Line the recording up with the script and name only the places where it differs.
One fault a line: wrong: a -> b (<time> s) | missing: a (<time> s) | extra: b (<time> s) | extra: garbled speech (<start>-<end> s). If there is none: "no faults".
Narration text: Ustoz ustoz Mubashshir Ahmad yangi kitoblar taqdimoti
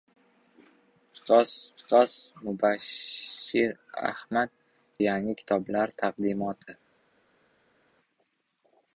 no faults